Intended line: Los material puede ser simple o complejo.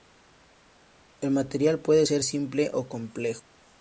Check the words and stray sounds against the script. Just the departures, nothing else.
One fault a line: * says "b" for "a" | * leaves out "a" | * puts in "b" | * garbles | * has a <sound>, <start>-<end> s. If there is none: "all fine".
* says "El" for "Los"